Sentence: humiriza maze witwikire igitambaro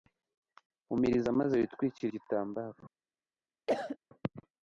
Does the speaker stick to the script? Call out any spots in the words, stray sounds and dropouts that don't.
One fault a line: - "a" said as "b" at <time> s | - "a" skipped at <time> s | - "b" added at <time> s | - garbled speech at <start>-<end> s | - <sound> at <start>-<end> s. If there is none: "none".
- cough at 3.7-4.0 s